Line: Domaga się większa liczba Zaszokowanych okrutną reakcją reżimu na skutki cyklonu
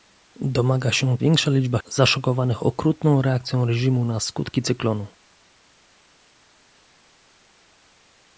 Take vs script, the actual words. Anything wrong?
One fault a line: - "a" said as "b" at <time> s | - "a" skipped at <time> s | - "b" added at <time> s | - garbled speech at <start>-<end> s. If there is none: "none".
none